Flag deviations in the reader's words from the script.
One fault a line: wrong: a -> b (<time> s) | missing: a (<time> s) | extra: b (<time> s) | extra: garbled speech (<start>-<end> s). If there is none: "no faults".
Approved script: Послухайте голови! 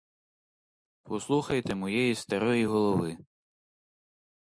extra: моєї старої (1.8 s)